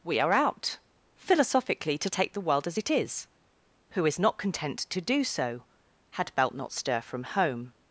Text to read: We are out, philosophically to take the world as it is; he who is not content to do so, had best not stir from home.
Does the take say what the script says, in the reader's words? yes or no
no